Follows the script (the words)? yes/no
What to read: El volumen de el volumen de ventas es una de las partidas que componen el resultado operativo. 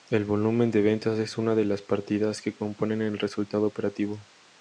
no